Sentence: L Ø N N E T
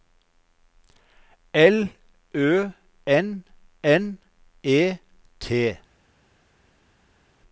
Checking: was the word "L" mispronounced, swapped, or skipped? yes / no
no